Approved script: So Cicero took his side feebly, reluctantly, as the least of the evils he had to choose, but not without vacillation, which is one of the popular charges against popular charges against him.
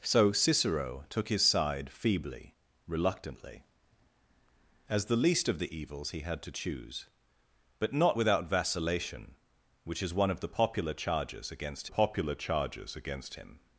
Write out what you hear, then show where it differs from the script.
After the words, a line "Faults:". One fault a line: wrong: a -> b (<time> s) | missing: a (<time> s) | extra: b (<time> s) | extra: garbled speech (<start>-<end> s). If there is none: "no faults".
So Cicero took his side feebly, reluctantly, as the least of the evils he had to choose, but not without vacillation, which is one of the popular charges against popular charges against him.
Faults:
no faults